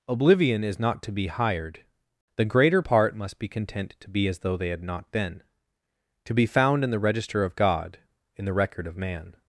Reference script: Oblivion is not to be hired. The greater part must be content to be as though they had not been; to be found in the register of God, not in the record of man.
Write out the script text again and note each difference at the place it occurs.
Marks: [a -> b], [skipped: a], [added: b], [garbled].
Oblivion is not to be hired. The greater part must be content to be as though they had not been; to be found in the register of God, [skipped: not] in the record of man.